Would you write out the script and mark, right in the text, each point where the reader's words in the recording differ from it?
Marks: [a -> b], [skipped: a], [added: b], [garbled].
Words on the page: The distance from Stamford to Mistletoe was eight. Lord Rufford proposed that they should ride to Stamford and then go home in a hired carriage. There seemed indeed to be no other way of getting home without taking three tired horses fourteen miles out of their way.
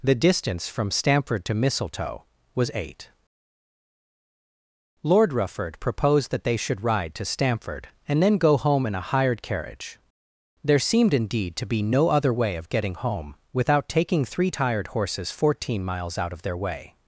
The distance from Stamford to Mistletoe was eight. Lord Rufford proposed that they should ride to Stamford and then go home in a hired carriage. There seemed indeed to be no other way of getting home without taking three tired horses fourteen miles out of their way.